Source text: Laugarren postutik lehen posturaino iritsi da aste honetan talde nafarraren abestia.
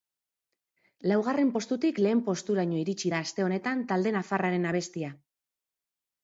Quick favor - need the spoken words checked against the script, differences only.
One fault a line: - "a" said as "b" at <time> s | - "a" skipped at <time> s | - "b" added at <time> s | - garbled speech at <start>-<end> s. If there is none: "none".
none